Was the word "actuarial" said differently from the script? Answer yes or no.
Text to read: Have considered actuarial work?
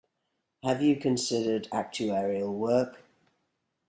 no